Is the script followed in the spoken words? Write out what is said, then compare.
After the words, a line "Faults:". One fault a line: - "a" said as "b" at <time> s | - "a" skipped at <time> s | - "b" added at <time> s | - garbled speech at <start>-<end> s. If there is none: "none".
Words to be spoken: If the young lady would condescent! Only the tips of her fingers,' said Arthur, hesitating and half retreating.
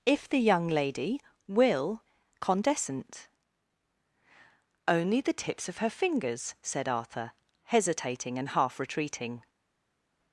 If the young lady will condescent! Only the tips of her fingers,' said Arthur, hesitating and half retreating.
Faults:
- "would" said as "will" at 1.5 s